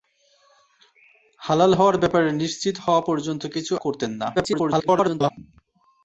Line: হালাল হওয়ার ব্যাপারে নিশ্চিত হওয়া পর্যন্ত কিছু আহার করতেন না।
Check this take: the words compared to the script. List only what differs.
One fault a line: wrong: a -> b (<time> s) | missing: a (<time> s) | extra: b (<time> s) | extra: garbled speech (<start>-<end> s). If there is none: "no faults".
missing: আহার (3.7 s)
extra: garbled speech (4.3-5.3 s)